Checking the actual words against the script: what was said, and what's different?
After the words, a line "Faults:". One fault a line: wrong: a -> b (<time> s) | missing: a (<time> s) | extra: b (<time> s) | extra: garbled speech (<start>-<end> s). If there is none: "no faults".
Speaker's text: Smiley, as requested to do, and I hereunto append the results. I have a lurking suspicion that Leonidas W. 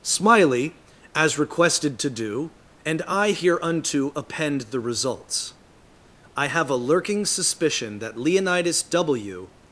Smiley, as requested to do, and I hereunto append the results. I have a lurking suspicion that Leonidas W.
Faults:
no faults